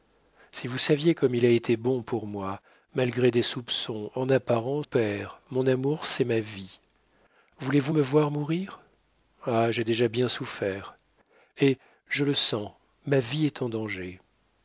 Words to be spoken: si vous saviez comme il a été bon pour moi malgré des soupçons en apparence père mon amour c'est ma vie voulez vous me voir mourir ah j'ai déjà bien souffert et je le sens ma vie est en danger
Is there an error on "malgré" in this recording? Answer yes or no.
no